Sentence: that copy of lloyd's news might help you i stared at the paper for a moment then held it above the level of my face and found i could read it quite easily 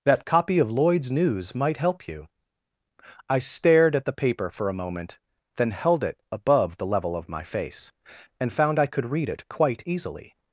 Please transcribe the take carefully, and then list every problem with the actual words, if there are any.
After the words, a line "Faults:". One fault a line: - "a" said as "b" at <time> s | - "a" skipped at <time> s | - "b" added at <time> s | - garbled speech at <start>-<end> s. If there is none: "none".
that copy of lloyd's news might help you i stared at the paper for a moment then held it above the level of my face and found i could read it quite easily
Faults:
none